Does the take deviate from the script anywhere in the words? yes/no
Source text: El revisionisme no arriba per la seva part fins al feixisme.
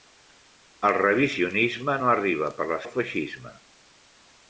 yes